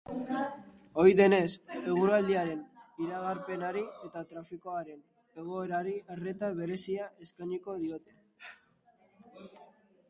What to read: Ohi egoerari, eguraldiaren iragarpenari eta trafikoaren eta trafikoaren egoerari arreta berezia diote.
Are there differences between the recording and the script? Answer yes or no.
yes